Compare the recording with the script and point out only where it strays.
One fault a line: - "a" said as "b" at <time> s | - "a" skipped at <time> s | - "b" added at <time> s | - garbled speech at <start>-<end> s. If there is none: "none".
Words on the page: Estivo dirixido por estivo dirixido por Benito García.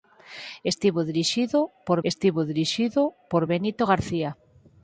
none